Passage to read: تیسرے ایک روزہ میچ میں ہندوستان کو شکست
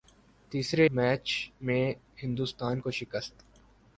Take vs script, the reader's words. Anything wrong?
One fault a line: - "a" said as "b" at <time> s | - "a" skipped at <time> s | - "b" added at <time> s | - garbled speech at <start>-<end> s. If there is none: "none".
- "ایک روزہ" skipped at 0.8 s